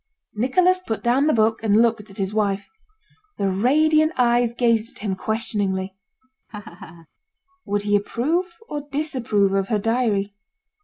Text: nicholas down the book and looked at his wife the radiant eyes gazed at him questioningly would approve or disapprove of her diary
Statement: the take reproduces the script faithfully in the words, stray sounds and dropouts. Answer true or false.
false